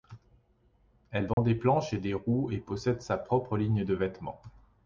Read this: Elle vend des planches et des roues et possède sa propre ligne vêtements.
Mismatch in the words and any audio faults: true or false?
true